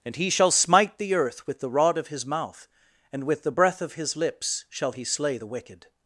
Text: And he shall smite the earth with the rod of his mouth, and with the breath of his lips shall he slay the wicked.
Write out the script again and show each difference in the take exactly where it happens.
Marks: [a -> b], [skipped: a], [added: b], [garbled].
And he shall smite the earth with the rod of his mouth, and with the breath of his lips shall he slay the wicked.